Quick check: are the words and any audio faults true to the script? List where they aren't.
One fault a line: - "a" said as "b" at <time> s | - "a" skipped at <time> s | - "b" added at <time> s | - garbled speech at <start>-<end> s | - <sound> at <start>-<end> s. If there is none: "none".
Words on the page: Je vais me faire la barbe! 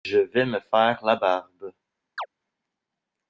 - chirp at 2.2-2.3 s